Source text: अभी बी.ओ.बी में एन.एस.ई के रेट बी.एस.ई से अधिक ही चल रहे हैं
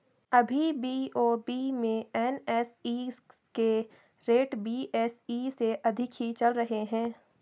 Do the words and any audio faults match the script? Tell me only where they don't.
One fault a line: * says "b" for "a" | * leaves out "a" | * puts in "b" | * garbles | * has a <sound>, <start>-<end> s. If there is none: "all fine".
all fine